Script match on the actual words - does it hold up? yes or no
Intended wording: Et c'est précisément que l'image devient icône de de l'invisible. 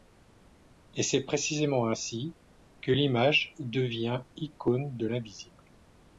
no